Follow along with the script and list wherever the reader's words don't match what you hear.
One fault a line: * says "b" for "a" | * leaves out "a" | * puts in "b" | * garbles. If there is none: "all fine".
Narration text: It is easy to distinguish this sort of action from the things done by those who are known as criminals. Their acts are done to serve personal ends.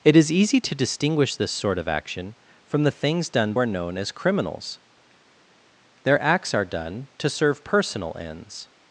* leaves out "by those who"